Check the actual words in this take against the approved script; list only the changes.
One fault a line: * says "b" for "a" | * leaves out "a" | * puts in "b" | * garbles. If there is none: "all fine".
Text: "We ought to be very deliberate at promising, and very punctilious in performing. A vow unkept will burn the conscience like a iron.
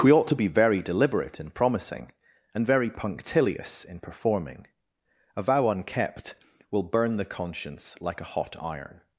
* says "in" for "at"
* puts in "hot"